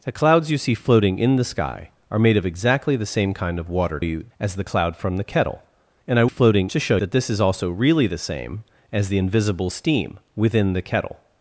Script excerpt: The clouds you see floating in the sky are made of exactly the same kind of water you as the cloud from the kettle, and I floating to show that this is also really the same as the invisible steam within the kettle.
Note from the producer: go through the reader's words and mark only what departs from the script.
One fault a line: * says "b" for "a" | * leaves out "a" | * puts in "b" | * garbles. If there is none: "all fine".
all fine